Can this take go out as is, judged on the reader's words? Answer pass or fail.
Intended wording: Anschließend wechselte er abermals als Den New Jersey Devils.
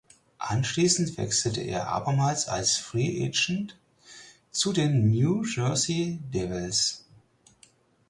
fail